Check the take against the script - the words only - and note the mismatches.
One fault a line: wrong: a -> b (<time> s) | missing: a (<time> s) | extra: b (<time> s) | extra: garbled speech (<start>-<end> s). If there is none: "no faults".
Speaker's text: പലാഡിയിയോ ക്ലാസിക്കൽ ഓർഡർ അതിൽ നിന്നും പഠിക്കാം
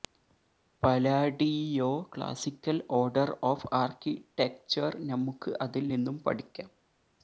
extra: ഓഫ് ആർക്കിടെക്ചർ നമുക്ക് (3.4 s)